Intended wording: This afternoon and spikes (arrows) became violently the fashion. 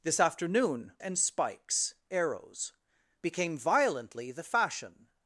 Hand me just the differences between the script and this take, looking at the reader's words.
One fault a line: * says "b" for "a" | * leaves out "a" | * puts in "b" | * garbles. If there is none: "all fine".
all fine